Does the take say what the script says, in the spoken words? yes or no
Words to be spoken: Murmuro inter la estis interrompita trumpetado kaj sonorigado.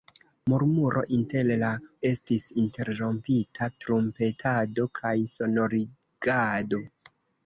yes